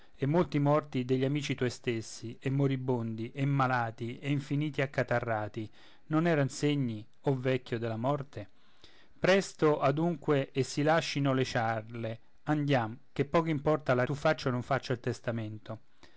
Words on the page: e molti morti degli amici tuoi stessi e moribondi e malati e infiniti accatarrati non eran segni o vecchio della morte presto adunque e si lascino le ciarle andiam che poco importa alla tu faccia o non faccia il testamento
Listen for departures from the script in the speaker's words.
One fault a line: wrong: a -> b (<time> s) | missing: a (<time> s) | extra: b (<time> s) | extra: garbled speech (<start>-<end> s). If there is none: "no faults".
no faults